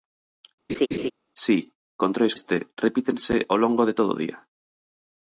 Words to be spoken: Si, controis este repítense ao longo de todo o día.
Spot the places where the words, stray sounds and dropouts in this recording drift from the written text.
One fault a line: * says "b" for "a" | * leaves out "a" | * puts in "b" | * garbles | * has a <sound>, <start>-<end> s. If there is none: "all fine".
* has a laugh, 0.7-1.1 s